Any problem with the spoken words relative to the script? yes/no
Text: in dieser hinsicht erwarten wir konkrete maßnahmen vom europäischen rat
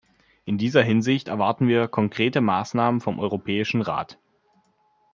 no